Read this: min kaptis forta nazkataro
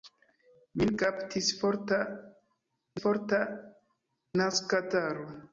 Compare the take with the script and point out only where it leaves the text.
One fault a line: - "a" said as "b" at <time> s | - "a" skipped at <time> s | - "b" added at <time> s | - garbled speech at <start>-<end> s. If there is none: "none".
- "forta" added at 3.0 s